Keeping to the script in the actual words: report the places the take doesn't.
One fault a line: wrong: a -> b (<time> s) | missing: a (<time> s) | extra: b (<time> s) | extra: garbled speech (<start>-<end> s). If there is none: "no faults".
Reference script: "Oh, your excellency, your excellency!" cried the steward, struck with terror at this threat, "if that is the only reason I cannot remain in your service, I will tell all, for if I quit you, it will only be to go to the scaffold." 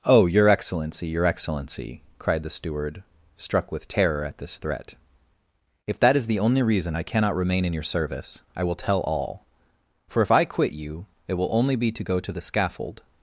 no faults